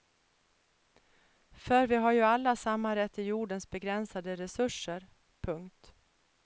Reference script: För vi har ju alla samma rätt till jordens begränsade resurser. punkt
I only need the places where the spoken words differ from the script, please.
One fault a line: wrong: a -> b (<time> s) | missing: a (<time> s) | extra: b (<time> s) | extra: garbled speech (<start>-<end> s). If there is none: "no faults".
no faults